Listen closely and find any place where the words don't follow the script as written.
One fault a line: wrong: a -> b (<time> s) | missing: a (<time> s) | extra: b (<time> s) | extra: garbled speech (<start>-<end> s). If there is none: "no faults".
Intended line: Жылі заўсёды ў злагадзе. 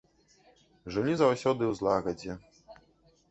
no faults